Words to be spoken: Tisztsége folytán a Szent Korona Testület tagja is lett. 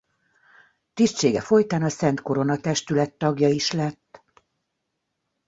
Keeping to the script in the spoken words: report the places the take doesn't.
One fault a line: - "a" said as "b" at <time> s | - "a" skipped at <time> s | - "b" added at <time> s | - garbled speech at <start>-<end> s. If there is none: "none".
none